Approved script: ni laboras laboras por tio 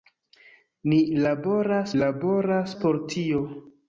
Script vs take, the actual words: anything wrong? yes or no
no